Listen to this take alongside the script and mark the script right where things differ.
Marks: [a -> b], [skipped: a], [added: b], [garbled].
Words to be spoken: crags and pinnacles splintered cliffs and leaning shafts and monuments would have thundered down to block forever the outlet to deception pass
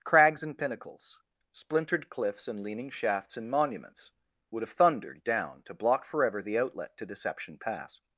crags and pinnacles splintered cliffs and leaning shafts and monuments would have thundered down to block forever the outlet to deception pass